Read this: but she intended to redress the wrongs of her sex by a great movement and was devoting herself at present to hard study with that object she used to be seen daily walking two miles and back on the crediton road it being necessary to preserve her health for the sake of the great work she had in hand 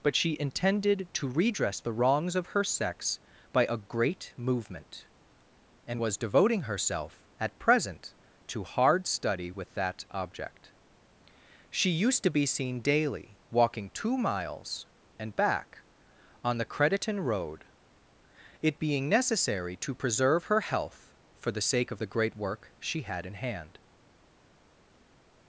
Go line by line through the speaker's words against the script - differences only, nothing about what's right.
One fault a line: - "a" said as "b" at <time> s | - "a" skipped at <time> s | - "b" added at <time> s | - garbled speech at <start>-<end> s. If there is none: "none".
none